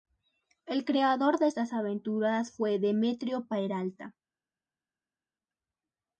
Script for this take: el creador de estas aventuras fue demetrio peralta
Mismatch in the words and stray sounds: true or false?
false